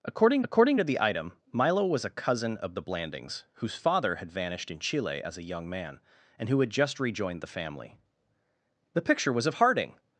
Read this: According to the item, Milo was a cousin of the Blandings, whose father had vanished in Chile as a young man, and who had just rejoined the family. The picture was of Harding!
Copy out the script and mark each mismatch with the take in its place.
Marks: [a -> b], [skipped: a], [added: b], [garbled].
According [added: according] to the item, Milo was a cousin of the Blandings, whose father had vanished in Chile as a young man, and who had just rejoined the family. The picture was of Harding!